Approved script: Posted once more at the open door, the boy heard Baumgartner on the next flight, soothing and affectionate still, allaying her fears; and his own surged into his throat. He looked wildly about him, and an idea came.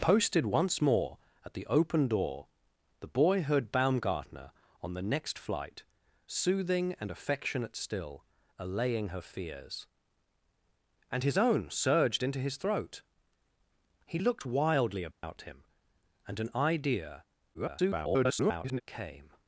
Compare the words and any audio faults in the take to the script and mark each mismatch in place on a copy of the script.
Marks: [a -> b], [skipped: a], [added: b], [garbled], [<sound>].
Posted once more at the open door, the boy heard Baumgartner on the next flight, soothing and affectionate still, allaying her fears; and his own surged into his throat. He looked wildly about [dropout] him, and an idea [garbled] came.